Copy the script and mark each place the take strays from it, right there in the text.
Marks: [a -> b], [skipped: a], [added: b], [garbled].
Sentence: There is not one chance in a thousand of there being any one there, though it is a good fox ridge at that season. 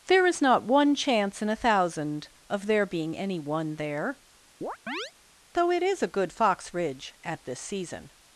There is not one chance in a thousand of there being any one there, though it is a good fox ridge at [that -> this] season.